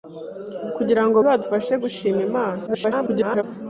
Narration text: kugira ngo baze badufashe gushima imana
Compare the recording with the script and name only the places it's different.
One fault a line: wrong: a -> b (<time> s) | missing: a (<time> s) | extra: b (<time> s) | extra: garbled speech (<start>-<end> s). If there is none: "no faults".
missing: baze (1.2 s)
extra: garbled speech (2.7-3.4 s)